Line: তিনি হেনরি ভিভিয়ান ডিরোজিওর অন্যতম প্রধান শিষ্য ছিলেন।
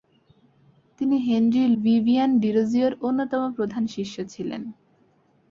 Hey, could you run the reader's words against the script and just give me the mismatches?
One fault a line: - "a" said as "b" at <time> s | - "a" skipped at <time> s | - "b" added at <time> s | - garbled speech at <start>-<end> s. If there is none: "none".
none